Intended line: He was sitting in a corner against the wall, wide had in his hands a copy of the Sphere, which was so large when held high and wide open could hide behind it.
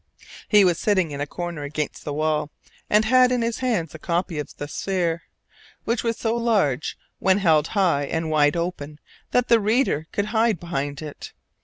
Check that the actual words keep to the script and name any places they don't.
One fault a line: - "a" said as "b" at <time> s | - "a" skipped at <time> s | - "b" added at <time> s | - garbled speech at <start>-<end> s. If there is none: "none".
- "wide" said as "and" at 2.9 s
- "that the reader" added at 9.3 s